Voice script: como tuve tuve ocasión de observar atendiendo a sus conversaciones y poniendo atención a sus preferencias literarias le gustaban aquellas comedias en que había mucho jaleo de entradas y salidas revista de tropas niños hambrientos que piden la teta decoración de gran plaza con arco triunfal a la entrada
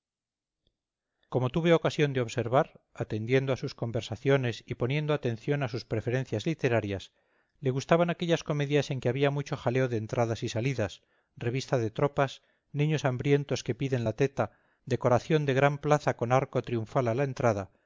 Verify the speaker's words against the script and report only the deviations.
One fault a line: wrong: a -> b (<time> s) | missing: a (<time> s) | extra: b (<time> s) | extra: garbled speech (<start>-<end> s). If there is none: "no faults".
missing: tuve (1.7 s)